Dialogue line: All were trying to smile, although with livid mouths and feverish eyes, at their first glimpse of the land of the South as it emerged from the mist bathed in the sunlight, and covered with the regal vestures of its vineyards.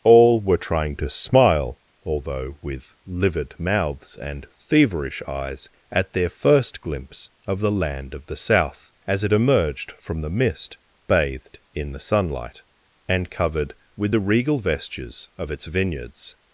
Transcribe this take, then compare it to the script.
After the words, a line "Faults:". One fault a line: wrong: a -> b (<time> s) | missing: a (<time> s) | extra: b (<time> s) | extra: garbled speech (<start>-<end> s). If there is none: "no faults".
All were trying to smile, although with livid mouths and feverish eyes, at their first glimpse of the land of the South as it emerged from the mist bathed in the sunlight, and covered with the regal vestures of its vineyards.
Faults:
no faults